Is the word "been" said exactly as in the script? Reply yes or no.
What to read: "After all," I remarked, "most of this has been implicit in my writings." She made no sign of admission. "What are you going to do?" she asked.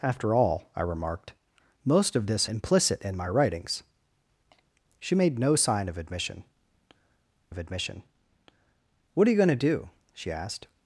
no